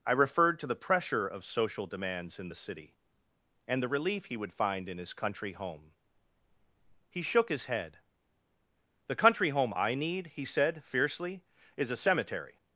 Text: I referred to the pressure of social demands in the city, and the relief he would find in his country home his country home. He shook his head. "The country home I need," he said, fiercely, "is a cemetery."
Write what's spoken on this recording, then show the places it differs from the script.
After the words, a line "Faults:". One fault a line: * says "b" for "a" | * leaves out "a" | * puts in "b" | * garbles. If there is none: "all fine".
I referred to the pressure of social demands in the city, and the relief he would find in his country home. He shook his head. "The country home I need," he said, fiercely, "is a cemetery."
Faults:
* leaves out "his country home"